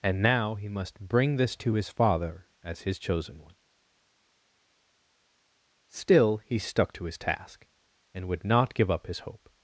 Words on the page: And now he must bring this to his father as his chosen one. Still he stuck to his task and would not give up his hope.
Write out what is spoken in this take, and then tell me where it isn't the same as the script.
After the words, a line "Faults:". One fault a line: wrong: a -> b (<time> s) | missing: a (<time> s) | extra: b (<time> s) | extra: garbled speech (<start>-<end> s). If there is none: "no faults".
And now he must bring this to his father as his chosen one. Still he stuck to his task and would not give up his hope.
Faults:
no faults